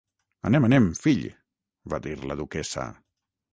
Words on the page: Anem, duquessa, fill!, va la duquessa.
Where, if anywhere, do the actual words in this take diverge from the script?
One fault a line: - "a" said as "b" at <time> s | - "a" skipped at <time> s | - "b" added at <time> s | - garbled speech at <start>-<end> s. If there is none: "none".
- "duquessa" said as "anem" at 0.7 s
- "dir" added at 2.1 s